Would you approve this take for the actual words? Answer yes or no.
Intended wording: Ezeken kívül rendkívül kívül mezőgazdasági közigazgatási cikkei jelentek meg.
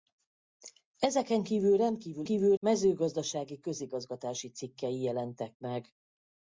yes